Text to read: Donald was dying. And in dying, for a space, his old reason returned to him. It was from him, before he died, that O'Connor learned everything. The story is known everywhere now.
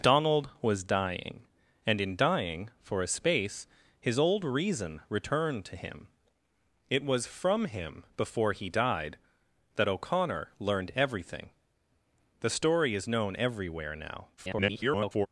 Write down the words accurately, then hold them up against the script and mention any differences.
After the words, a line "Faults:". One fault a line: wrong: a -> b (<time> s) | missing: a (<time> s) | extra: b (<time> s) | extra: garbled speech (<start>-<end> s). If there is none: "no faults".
Donald was dying. And in dying, for a space, his old reason returned to him. It was from him, before he died, that O'Connor learned everything. The story is known everywhere now. [garbled]
Faults:
extra: garbled speech (14.4-15.3 s)